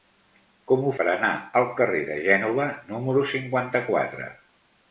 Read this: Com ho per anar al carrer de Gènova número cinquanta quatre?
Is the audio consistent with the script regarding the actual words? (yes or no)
yes